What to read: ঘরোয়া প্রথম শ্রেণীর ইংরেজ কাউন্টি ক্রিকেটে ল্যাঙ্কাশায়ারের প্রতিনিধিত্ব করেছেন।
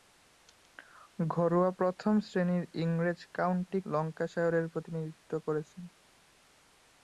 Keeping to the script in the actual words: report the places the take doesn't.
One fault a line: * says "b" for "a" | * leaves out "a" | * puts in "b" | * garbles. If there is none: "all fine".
* leaves out "ক্রিকেটে"